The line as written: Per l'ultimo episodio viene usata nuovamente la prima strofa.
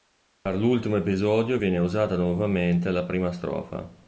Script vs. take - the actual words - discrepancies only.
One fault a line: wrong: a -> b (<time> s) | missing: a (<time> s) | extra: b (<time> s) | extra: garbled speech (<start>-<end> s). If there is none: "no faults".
no faults